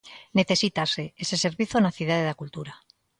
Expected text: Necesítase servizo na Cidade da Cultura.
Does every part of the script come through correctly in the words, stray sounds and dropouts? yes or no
no